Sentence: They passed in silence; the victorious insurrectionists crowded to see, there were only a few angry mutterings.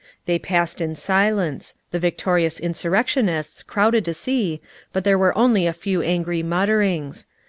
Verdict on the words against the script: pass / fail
fail